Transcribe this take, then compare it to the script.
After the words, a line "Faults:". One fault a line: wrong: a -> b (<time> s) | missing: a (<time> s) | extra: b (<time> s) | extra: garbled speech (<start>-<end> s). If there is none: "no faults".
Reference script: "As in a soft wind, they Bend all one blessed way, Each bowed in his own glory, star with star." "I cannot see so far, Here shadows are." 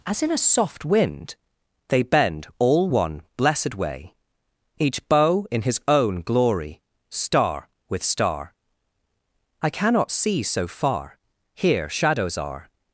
"As in a soft wind, they Bend all one blessed way, Each bow in his own glory, star with star." "I cannot see so far, Here shadows are."
Faults:
wrong: bowed -> bow (5.1 s)